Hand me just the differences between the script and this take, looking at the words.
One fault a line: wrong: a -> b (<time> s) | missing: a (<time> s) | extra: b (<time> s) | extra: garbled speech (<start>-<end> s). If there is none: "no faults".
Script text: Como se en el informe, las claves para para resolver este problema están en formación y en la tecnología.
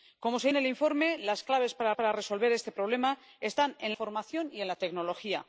no faults